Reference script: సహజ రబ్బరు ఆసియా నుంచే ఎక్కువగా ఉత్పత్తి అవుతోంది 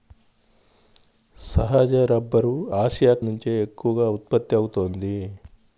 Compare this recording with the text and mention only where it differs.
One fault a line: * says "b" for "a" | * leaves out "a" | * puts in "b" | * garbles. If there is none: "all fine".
all fine